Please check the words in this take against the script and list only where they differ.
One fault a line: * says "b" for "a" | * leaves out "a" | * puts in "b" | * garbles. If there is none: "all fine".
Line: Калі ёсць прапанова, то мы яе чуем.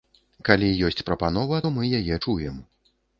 all fine